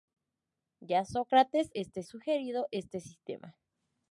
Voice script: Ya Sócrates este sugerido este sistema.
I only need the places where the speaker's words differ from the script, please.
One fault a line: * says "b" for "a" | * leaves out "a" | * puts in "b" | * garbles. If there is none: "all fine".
all fine